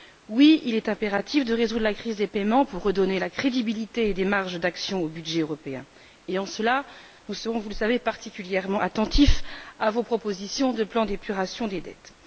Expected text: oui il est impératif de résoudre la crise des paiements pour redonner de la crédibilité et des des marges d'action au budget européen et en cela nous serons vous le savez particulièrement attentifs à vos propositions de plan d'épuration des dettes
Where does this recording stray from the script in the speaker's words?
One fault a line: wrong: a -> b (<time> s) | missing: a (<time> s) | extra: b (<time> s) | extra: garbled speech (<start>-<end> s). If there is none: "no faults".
missing: des (4.2 s)